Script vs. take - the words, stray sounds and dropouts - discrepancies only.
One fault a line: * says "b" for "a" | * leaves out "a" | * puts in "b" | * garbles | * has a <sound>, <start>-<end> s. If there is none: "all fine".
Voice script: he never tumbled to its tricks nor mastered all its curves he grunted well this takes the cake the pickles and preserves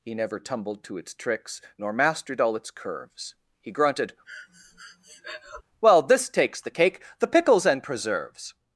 * has a breath, 4.3-5.6 s